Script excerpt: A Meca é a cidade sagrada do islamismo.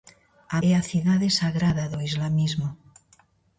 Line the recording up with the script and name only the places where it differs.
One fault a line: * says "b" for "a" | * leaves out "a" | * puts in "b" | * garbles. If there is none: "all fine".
* leaves out "Meca"